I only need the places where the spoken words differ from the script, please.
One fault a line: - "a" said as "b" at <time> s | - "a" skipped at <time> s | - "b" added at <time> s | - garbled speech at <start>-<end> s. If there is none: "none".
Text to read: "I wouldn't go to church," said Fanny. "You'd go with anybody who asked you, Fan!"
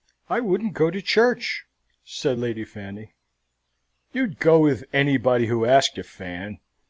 - "Lady" added at 2.4 s